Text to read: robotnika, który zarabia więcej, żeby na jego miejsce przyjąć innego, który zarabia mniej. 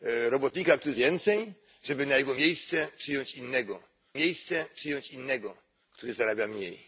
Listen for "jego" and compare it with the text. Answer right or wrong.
right